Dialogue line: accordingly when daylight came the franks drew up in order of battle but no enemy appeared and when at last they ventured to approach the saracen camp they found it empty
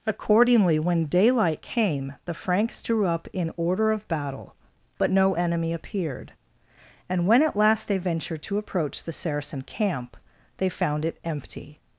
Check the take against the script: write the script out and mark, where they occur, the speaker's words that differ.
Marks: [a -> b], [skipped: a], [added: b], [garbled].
accordingly when daylight came the franks drew up in order of battle but no enemy appeared and when at last they ventured to approach the saracen camp they found it empty